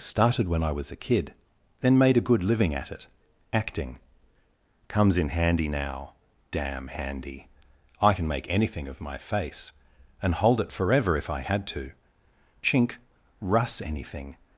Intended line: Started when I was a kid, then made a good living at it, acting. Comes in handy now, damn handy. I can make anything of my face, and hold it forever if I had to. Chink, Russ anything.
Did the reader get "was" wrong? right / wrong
right